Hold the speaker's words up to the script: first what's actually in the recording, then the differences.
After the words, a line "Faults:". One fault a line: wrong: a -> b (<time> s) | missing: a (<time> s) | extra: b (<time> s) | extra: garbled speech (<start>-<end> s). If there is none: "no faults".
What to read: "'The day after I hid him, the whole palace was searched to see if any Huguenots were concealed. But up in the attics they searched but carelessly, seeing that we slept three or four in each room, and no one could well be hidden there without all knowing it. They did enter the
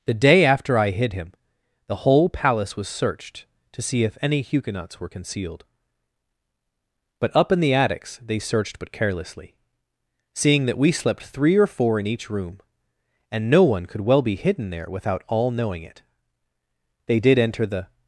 "'The day after I hid him, the whole palace was searched to see if any Huguenots were concealed. But up in the attics they searched but carelessly, seeing that we slept three or four in each room, and no one could well be hidden there without all knowing it. They did enter the
Faults:
no faults